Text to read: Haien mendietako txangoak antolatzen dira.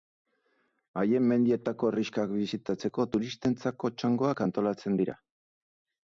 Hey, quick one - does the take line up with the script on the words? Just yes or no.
no